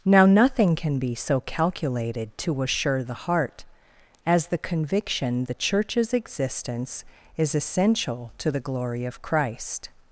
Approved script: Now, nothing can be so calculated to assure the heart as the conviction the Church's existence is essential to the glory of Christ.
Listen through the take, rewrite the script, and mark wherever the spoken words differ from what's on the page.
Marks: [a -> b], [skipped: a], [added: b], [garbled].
Now, nothing can be so calculated to assure the heart as the conviction the Church's existence is essential to the glory of Christ.